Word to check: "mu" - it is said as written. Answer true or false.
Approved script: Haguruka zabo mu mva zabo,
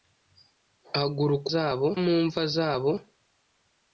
true